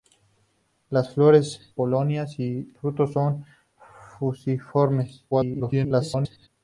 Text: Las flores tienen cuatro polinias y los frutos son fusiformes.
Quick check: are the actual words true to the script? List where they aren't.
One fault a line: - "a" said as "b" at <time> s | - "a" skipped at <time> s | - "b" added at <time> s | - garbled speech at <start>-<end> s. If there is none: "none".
- "tienen cuatro" skipped at 1.8 s
- "los" skipped at 2.7 s
- garbled speech at 5.3-6.5 s